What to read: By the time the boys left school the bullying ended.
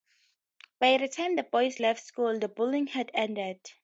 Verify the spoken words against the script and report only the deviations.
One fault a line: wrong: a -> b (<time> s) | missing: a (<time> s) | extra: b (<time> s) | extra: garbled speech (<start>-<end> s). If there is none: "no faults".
extra: had (2.9 s)